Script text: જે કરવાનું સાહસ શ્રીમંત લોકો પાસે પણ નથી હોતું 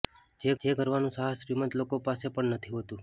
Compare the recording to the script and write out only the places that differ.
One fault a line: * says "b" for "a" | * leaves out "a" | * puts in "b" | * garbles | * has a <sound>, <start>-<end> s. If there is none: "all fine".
* puts in "જે"